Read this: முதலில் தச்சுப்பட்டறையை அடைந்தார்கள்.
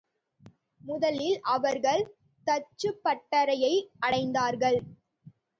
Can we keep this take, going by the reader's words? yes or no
no